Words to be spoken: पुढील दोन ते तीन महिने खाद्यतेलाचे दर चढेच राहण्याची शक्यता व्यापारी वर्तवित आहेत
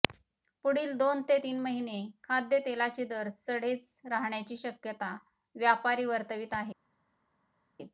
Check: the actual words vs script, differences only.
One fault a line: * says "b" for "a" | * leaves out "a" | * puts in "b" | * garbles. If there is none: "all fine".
all fine